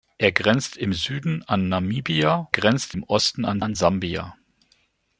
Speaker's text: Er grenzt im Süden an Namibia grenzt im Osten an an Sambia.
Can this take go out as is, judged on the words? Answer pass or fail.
pass